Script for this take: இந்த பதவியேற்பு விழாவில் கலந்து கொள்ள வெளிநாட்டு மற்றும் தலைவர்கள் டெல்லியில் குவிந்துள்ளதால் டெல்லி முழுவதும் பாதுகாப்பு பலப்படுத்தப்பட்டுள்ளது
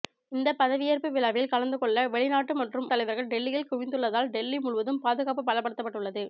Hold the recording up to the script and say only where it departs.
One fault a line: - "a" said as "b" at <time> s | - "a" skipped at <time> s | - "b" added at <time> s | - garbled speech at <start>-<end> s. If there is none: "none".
none